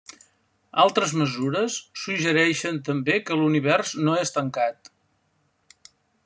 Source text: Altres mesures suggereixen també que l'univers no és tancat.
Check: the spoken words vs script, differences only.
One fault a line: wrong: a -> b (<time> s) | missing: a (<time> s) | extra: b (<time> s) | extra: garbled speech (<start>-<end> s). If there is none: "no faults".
no faults